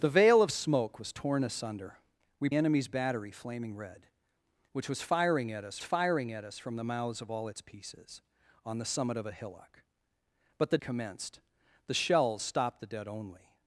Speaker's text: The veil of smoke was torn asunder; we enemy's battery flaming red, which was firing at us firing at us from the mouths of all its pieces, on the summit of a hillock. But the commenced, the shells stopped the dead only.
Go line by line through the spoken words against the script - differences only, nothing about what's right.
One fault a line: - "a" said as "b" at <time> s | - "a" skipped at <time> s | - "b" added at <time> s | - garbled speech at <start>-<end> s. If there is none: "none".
none